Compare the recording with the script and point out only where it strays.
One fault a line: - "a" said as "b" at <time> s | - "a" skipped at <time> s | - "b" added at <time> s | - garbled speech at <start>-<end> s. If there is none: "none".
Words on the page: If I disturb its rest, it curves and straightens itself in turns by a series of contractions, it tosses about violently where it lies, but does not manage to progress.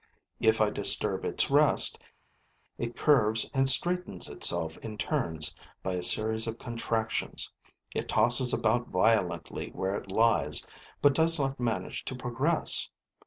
none